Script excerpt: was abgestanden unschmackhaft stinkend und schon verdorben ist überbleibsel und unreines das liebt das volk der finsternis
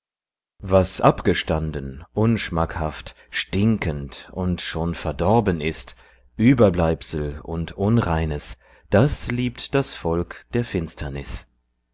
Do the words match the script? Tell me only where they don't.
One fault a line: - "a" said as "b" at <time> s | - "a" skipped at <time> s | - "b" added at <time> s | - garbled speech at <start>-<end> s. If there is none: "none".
none